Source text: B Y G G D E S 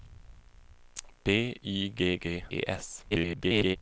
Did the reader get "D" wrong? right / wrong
wrong